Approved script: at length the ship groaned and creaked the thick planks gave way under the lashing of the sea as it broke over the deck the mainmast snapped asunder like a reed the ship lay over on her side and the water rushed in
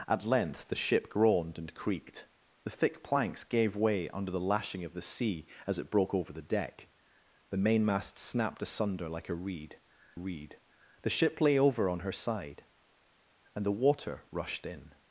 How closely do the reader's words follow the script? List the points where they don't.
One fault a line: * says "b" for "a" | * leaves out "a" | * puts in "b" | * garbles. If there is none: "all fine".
* puts in "reed"